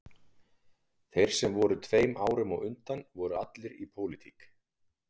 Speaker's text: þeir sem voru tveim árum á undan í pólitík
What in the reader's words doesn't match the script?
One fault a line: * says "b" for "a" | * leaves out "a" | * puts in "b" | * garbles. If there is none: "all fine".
* puts in "voru allir"